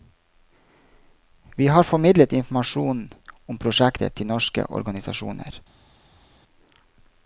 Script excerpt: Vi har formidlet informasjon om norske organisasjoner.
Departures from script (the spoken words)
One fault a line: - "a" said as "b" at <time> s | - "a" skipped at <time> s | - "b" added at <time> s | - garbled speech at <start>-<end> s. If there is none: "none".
- "prosjektet til" added at 3.6 s